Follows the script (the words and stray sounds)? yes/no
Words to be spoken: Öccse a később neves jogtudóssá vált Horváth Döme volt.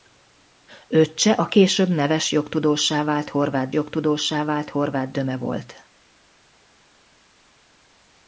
no